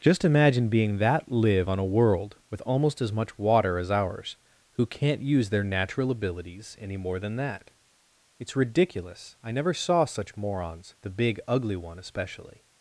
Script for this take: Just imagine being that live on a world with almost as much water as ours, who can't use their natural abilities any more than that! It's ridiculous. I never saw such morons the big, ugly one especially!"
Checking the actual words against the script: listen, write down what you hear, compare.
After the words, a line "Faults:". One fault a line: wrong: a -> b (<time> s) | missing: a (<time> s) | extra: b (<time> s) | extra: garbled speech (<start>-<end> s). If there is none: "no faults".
Just imagine being that live on a world with almost as much water as ours, who can't use their natural abilities any more than that! It's ridiculous. I never saw such morons the big, ugly one especially!"
Faults:
no faults